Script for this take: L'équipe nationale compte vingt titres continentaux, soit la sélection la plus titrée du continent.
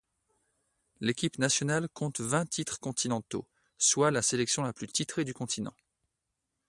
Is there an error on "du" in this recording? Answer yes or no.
no